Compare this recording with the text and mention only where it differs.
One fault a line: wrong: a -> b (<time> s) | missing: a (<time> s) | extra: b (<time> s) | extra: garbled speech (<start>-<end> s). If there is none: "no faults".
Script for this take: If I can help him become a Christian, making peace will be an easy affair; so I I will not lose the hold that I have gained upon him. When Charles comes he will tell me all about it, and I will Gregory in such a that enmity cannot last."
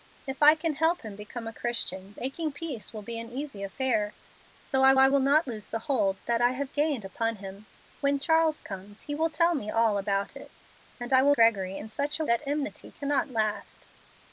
no faults